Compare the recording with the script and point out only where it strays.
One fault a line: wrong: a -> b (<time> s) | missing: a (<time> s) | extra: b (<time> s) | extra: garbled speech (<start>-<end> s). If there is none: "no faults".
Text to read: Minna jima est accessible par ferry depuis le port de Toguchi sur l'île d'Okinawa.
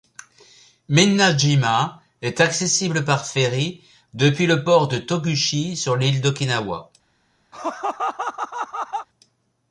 no faults